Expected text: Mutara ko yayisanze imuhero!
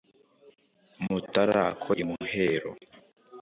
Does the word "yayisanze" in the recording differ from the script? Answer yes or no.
yes